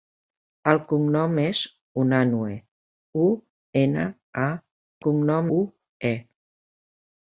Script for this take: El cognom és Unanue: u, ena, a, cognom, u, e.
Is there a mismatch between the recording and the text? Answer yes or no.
no